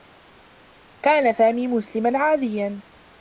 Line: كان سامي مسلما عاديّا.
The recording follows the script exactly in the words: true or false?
true